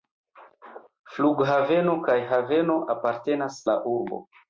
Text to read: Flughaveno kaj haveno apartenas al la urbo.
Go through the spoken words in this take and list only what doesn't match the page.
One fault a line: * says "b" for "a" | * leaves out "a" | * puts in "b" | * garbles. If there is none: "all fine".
* leaves out "al"